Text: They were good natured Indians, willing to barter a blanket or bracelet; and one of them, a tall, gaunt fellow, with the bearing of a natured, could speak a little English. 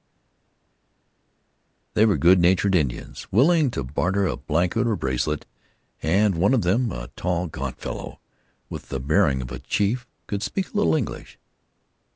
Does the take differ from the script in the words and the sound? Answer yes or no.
yes